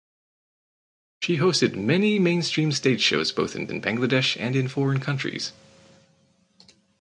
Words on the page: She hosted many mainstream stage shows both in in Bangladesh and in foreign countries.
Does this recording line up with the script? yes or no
yes